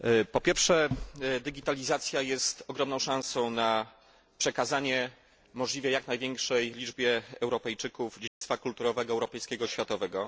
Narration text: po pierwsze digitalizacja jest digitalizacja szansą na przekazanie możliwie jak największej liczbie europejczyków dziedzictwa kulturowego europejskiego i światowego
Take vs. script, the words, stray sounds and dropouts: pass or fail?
fail